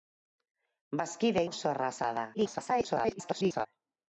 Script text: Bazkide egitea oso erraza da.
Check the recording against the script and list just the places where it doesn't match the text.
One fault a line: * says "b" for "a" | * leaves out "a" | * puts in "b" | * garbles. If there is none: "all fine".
* leaves out "egitea"
* garbles